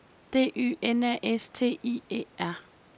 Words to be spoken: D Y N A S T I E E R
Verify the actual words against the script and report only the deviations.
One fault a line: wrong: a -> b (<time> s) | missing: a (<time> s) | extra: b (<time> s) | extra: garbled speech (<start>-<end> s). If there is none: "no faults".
missing: E (2.2 s)